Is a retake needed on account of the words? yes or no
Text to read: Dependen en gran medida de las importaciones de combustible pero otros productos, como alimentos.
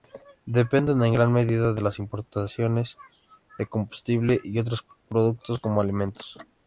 yes